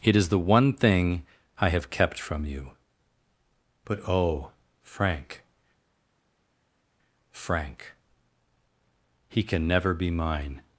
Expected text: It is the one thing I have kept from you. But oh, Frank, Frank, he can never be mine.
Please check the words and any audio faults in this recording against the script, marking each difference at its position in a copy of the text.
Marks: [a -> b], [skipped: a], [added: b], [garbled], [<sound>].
It is the one thing I have kept from you. But oh, Frank, Frank, he can never be mine.